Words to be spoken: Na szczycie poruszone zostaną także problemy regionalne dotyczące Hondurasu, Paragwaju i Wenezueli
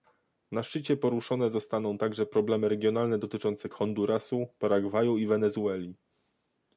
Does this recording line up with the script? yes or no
yes